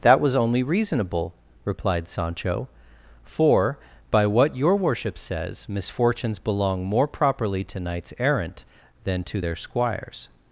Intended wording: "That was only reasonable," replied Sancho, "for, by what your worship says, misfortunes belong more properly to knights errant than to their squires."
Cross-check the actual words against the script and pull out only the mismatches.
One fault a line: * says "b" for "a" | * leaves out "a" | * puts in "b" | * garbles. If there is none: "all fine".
all fine